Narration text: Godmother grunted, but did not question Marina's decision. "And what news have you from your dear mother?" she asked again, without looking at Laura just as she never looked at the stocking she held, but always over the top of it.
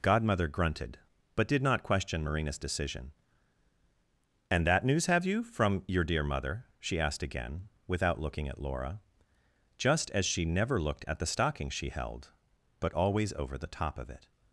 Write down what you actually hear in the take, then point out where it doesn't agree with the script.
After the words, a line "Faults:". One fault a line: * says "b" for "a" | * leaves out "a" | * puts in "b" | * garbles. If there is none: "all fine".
Godmother grunted, but did not question Marina's decision. "And that news have you from your dear mother?" she asked again, without looking at Laura just as she never looked at the stocking she held, but always over the top of it.
Faults:
* says "that" for "what"